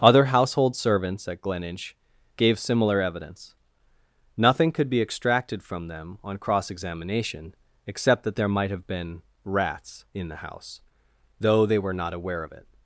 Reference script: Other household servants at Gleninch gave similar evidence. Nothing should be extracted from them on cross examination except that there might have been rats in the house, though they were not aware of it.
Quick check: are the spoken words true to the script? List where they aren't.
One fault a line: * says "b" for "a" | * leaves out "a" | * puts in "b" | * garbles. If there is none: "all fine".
* says "could" for "should"